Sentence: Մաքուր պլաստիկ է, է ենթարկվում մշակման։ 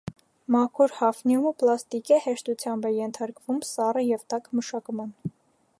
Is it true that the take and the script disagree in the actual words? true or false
true